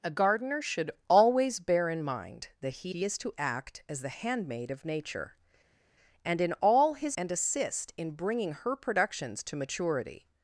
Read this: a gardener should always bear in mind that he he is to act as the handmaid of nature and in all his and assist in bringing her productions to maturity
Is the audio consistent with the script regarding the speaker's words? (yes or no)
yes